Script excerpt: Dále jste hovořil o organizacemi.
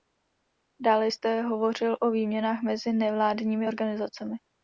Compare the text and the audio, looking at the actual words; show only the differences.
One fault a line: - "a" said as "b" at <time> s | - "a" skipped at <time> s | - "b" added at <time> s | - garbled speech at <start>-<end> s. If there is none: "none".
- "výměnách mezi nevládními" added at 2.1 s